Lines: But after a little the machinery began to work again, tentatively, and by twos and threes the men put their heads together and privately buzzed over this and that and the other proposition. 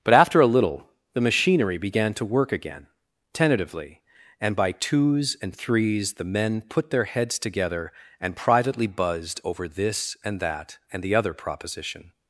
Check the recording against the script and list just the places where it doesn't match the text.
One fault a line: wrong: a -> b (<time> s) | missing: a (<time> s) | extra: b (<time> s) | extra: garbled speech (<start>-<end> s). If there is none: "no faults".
no faults